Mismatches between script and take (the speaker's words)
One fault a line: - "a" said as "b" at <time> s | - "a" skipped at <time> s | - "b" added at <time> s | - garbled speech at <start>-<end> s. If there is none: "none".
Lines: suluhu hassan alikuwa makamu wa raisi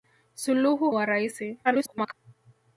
- "hassan alikuwa makamu" skipped at 0.9 s
- garbled speech at 1.6-2.1 s